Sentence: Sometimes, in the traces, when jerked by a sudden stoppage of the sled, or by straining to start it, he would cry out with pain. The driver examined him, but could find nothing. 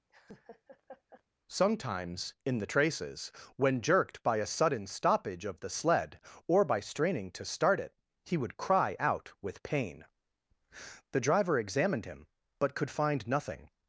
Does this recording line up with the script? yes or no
yes